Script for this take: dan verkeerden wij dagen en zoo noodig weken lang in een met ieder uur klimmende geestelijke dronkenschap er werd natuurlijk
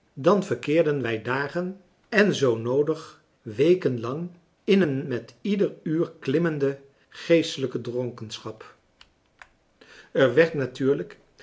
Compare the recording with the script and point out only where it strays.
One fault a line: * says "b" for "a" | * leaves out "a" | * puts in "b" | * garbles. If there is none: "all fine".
all fine